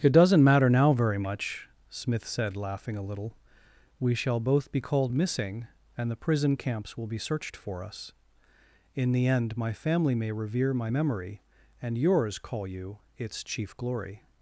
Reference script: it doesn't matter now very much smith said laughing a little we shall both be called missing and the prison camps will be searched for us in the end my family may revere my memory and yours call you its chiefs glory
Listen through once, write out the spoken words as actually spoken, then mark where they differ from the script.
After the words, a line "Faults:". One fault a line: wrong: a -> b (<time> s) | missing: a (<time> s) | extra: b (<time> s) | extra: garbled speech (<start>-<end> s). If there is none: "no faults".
it doesn't matter now very much smith said laughing a little we shall both be called missing and the prison camps will be searched for us in the end my family may revere my memory and yours call you its chief glory
Faults:
wrong: chiefs -> chief (13.4 s)